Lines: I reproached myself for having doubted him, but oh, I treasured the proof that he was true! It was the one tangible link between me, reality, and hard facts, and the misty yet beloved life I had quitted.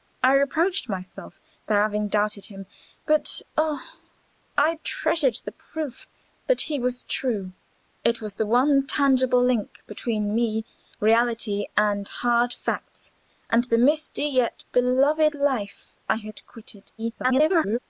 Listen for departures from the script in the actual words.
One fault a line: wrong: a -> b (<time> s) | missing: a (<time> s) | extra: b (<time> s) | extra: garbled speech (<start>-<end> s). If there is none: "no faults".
extra: garbled speech (17.0-17.8 s)